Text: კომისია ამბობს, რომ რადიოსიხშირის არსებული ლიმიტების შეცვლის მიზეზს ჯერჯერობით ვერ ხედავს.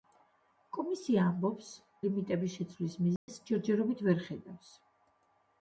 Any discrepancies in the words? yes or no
yes